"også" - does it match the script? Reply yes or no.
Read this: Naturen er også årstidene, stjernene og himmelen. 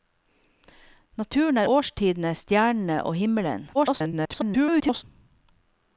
no